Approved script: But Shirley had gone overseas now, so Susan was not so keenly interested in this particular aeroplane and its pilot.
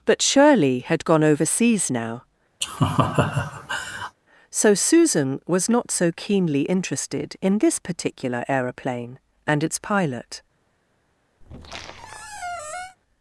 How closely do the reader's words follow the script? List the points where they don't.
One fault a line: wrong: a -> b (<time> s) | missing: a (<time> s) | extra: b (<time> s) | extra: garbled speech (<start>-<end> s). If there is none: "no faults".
no faults